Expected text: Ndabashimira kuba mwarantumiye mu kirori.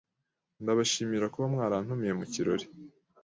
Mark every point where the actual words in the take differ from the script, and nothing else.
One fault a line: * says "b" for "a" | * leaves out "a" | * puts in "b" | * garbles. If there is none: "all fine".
all fine